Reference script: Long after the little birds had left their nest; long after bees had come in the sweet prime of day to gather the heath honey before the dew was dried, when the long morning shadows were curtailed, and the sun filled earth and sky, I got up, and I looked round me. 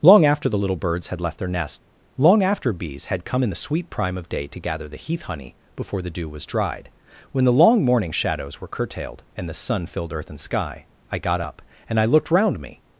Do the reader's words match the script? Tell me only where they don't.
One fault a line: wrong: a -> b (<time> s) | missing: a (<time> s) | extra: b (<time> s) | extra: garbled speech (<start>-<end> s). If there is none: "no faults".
no faults